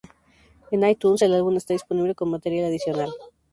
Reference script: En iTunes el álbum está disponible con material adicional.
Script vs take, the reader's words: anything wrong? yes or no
no